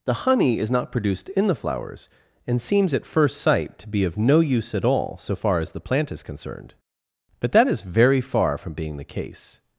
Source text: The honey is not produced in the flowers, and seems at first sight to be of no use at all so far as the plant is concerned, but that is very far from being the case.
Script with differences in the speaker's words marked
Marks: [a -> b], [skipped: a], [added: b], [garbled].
The honey is not produced in the flowers, and seems at first sight to be of no use at all so far as the plant is concerned, but that is very far from being the case.